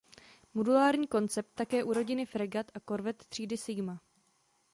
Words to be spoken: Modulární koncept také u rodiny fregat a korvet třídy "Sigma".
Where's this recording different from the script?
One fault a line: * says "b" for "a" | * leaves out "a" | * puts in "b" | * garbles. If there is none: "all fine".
all fine